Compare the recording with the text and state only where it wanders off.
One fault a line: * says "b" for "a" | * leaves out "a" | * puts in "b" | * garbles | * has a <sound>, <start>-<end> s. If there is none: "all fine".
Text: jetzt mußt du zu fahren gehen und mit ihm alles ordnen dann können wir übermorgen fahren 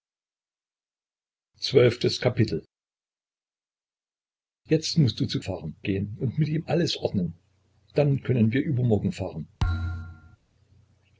* has a thud, 9.6-10.4 s